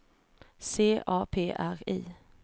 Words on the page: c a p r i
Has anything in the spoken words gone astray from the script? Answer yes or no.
no